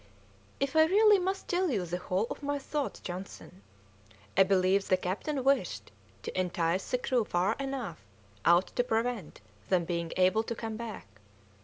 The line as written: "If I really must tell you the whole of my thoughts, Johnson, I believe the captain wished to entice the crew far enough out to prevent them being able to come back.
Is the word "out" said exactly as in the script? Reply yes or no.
yes